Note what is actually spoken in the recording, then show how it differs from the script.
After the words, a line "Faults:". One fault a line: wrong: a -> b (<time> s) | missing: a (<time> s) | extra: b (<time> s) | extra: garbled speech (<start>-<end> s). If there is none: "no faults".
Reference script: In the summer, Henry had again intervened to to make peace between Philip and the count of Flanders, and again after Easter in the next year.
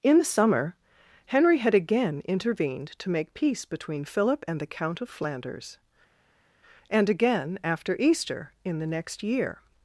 In the summer, Henry had again intervened to make peace between Philip and the count of Flanders, and again after Easter in the next year.
Faults:
missing: to (3.1 s)